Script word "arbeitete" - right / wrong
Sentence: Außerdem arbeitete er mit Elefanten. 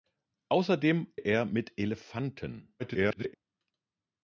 wrong